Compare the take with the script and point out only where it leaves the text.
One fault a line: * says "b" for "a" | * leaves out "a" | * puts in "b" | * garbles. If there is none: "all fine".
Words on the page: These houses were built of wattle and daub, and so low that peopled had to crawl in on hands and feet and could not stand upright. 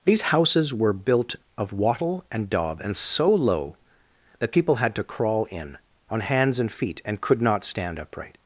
* says "people" for "peopled"